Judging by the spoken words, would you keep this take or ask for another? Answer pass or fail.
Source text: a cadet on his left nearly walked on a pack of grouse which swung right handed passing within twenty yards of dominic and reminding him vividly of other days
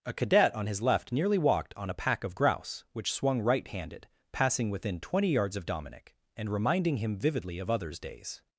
fail